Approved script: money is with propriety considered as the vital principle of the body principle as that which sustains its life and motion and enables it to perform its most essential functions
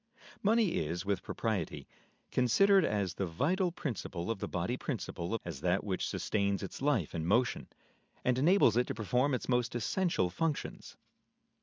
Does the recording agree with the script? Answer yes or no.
yes